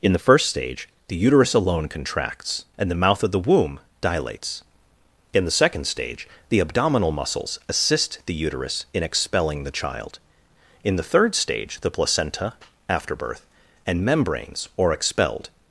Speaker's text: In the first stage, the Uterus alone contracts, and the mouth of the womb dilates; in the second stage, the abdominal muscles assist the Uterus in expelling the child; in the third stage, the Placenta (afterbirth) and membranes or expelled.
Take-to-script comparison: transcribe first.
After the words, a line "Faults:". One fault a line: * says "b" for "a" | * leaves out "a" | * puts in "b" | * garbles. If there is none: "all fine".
In the first stage, the Uterus alone contracts, and the mouth of the womb dilates; in the second stage, the abdominal muscles assist the Uterus in expelling the child; in the third stage, the Placenta (afterbirth) and membranes or expelled.
Faults:
all fine